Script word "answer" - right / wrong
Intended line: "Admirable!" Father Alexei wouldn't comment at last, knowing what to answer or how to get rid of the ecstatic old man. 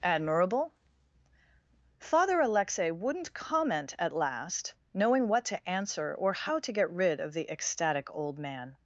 right